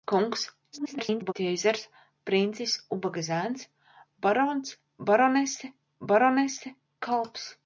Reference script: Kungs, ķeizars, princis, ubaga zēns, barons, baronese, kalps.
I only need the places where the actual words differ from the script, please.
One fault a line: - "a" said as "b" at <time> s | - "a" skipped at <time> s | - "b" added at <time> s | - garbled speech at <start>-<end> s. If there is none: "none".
- garbled speech at 0.7-1.3 s
- "baronese" added at 6.0 s